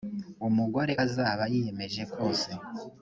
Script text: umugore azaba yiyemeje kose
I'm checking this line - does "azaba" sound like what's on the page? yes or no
yes